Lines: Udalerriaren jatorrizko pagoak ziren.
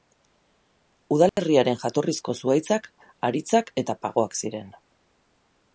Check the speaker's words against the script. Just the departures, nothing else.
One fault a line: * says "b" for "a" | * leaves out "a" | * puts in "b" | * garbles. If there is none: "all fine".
* puts in "zuhaitzak haritzak eta"